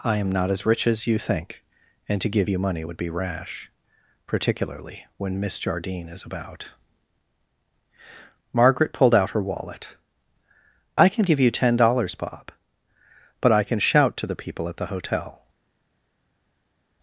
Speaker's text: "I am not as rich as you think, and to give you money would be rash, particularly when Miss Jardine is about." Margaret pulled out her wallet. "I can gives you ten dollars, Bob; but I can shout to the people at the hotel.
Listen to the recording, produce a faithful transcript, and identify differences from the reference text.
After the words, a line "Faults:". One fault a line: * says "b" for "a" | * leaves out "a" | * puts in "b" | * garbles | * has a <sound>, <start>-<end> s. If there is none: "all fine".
"I am not as rich as you think, and to give you money would be rash, particularly when Miss Jardine is about." Margaret pulled out her wallet. "I can give you ten dollars, Bob; but I can shout to the people at the hotel.
Faults:
* says "give" for "gives"